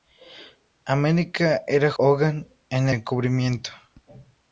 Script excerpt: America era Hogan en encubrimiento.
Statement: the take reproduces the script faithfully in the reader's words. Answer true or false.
true